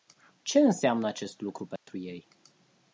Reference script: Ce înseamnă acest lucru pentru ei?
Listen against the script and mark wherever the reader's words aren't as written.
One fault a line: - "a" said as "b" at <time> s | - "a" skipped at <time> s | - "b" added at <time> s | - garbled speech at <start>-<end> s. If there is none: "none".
none